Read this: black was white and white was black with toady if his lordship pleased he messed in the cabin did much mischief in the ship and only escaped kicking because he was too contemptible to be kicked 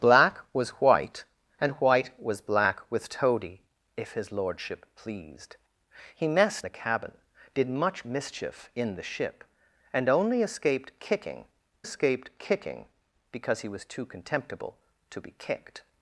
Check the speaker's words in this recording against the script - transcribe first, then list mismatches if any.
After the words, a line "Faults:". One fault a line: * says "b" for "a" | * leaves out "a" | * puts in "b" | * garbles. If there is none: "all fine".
black was white and white was black with toady if his lordship pleased he messed the cabin did much mischief in the ship and only escaped kicking escaped kicking because he was too contemptible to be kicked
Faults:
* leaves out "in"
* puts in "escaped kicking"